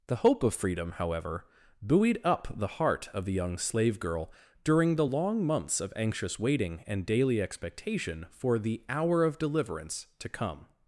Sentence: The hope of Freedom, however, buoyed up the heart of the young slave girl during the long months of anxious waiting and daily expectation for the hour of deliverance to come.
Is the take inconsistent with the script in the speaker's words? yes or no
no